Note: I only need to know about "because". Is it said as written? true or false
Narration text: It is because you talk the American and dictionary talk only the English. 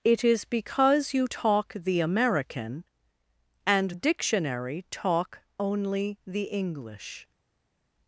true